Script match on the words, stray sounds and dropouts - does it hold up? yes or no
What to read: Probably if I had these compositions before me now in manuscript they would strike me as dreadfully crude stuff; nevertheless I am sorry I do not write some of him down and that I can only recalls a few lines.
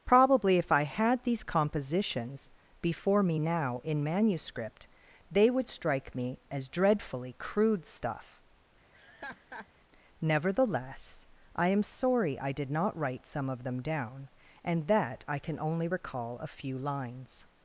no